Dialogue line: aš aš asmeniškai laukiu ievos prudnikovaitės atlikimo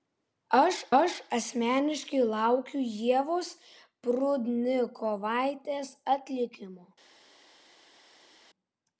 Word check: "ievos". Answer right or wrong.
right